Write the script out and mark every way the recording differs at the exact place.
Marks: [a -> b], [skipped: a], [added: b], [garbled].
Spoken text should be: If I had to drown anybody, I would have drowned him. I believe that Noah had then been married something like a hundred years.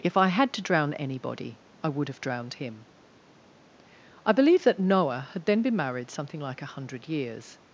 If I had to drown anybody, I would have drowned him. I believe that Noah had then been married something like a hundred years.